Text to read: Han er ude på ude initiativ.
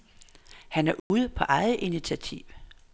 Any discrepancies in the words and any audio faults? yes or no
yes